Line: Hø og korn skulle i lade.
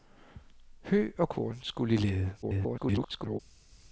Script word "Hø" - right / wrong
right